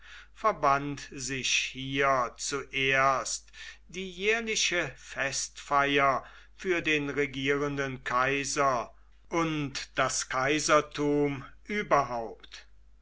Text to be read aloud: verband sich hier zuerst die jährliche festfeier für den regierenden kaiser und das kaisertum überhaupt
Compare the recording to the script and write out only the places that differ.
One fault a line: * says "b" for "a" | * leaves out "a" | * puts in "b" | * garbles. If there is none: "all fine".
all fine